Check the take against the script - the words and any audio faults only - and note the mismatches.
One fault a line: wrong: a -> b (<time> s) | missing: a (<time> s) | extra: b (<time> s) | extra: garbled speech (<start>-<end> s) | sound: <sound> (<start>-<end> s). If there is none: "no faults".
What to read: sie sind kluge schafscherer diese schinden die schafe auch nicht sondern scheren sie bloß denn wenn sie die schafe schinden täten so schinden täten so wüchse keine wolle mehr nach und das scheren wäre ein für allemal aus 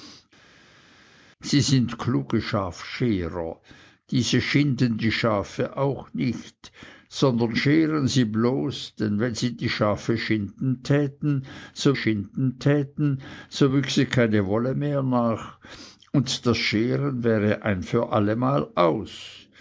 no faults